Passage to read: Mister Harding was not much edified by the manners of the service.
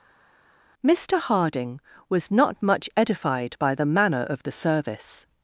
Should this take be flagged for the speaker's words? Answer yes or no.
yes